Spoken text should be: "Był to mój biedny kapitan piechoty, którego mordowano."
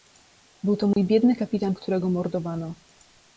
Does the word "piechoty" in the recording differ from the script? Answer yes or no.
yes